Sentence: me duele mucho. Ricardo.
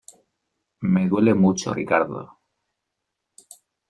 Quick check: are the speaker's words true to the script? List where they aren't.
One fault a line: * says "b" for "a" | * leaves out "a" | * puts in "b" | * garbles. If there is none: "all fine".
all fine